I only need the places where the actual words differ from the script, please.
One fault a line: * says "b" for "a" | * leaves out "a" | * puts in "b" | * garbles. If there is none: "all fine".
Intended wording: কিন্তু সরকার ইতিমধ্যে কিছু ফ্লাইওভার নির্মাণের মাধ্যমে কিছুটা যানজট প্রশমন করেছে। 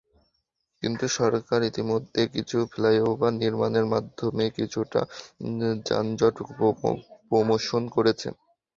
all fine